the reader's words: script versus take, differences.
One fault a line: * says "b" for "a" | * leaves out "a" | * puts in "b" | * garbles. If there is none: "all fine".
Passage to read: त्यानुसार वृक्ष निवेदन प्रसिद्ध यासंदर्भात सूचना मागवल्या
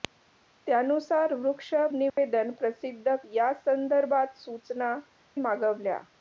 all fine